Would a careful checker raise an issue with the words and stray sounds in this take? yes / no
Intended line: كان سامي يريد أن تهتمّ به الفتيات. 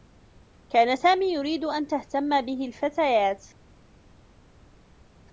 no